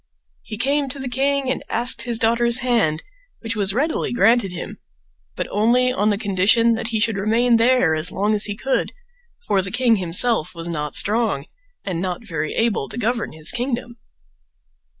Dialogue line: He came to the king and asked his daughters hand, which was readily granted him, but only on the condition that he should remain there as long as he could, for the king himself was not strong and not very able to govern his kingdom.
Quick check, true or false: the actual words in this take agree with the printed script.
true